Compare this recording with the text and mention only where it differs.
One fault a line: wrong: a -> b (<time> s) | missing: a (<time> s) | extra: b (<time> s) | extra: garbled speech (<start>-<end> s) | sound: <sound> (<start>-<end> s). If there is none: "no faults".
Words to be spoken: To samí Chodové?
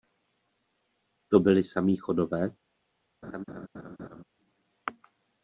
extra: byli (1.4 s)
sound: laugh (3.2-4.2 s)